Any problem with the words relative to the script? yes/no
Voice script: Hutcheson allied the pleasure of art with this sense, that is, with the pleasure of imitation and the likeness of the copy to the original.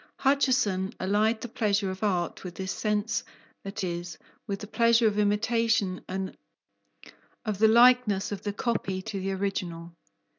yes